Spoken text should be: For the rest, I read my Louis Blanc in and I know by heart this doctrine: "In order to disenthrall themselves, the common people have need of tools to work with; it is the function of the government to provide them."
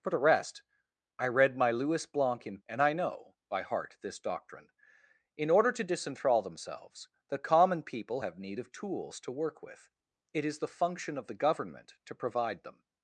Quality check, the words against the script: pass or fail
pass